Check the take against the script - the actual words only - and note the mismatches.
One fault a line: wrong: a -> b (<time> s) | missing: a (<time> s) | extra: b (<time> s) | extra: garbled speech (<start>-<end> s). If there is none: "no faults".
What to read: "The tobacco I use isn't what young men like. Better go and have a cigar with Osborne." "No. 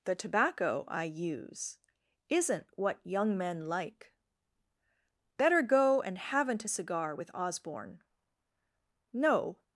wrong: have -> haven't (6.2 s)